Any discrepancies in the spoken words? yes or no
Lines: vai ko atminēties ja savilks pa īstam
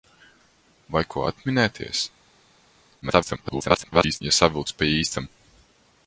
yes